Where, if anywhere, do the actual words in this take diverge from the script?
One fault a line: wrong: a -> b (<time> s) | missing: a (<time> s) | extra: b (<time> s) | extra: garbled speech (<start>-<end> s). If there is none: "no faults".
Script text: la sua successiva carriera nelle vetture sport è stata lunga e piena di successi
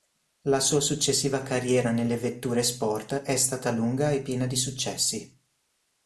no faults